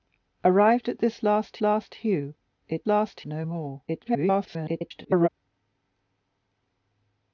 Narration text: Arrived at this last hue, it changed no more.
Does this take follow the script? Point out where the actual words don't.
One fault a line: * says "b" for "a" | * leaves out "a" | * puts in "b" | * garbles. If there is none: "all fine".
* puts in "last"
* says "last" for "changed"
* garbles